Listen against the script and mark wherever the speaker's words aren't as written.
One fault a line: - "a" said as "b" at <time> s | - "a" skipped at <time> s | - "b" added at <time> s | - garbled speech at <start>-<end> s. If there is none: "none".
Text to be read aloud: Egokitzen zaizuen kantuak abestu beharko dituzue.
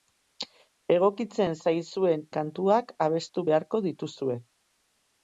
none